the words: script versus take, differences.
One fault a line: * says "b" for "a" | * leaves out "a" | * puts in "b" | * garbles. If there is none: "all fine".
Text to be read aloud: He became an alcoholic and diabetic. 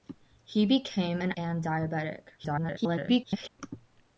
* leaves out "alcoholic"
* garbles